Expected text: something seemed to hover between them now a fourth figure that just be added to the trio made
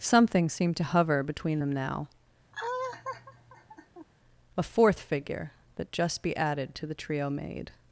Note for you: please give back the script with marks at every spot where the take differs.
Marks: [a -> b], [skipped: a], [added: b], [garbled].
something seemed to hover between them now a fourth figure that just be added to the trio made